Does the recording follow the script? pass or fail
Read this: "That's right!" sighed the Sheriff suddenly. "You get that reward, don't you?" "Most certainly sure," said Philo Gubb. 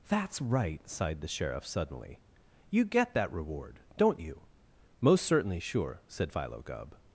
pass